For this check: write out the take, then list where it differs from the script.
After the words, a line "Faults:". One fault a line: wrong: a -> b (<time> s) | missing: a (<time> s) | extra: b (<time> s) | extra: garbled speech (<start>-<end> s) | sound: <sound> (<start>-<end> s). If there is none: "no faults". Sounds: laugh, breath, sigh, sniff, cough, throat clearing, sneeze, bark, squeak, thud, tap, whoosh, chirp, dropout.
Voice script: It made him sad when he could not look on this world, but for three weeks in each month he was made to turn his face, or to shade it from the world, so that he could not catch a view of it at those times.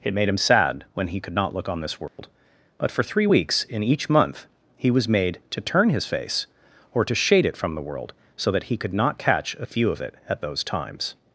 It made him sad when he could not look on this world, but for three weeks in each month he was made to turn his face, or to shade it from the world, so that he could not catch a view of it at those times.
Faults:
sound: dropout (2.1-2.2 s)